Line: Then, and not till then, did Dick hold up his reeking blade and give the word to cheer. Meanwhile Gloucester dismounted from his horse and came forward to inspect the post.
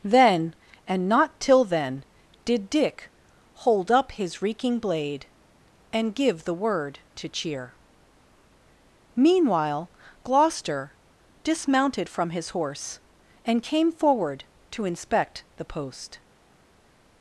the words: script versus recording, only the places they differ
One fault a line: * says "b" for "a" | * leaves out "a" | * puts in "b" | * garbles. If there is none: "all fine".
all fine